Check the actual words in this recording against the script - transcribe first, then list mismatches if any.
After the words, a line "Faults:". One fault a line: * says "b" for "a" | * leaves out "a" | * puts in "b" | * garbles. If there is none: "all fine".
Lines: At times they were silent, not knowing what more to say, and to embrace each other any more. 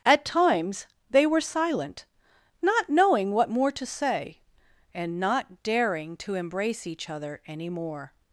At times they were silent, not knowing what more to say, and not daring to embrace each other any more.
Faults:
* puts in "not daring"